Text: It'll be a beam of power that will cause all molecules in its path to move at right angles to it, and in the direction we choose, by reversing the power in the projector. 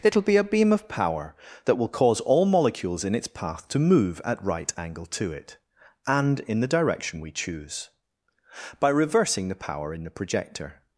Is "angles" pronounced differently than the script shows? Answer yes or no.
yes